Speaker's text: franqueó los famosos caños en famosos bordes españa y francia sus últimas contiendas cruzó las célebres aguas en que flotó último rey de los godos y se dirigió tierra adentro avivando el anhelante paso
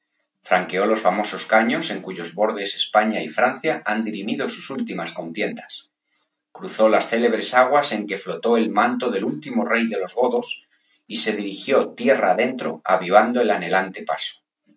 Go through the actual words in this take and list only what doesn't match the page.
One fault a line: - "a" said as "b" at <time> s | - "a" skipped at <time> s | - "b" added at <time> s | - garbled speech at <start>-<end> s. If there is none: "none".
- "famosos" said as "cuyos" at 2.0 s
- "han dirimido" added at 3.9 s
- "el manto del" added at 8.6 s